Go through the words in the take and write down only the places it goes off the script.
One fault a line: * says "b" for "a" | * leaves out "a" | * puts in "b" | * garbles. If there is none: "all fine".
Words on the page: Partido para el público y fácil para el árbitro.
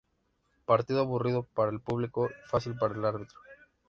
* puts in "aburrido"